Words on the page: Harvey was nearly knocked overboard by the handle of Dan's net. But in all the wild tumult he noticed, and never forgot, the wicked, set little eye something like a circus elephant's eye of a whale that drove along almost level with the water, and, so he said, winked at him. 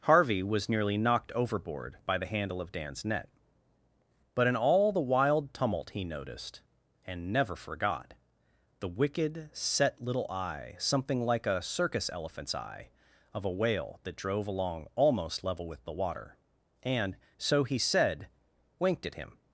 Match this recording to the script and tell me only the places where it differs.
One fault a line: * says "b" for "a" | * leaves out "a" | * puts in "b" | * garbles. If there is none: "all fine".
all fine